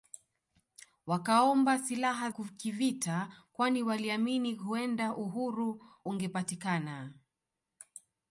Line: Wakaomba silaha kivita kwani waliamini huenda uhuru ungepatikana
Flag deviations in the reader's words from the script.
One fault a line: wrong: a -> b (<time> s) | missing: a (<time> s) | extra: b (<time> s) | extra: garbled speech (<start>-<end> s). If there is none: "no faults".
no faults